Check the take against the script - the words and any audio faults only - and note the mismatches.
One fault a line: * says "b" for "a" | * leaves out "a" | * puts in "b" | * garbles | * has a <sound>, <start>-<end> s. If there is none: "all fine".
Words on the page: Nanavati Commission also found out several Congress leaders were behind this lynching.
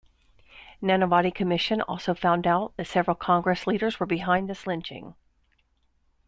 * puts in "that"